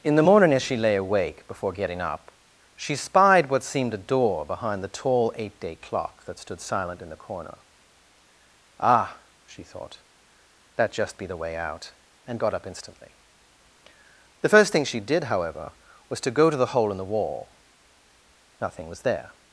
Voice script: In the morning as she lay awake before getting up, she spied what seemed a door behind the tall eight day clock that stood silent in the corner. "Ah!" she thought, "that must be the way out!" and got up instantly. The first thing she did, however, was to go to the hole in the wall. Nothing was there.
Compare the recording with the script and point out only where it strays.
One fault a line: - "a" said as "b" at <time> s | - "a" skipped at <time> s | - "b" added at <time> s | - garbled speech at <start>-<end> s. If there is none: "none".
- "must" said as "just" at 10.9 s